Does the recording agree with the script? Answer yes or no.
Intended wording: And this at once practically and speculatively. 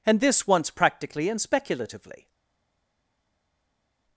no